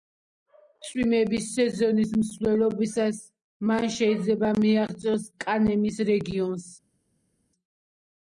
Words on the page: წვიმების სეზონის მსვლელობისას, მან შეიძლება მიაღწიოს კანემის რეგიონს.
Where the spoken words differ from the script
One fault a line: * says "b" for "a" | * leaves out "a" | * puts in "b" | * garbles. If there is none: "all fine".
all fine